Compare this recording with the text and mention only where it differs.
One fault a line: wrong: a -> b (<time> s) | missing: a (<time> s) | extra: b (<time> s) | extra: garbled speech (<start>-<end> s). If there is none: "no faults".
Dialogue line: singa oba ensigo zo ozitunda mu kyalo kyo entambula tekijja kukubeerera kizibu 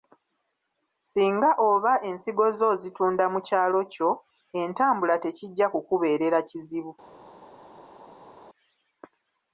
no faults